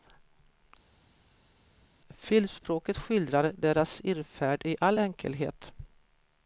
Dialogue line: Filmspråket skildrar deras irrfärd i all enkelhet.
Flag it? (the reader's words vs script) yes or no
no